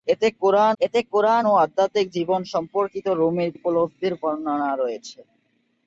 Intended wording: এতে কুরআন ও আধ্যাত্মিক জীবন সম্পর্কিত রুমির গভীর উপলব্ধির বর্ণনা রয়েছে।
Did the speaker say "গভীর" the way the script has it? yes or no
no